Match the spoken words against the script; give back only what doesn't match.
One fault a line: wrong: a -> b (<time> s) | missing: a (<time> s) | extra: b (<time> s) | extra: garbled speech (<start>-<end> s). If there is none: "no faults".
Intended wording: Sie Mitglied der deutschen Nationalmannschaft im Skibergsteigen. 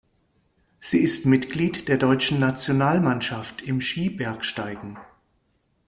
extra: ist (1.0 s)